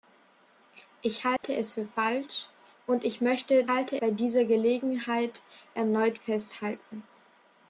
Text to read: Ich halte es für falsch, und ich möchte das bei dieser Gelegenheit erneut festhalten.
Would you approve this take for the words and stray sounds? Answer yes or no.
no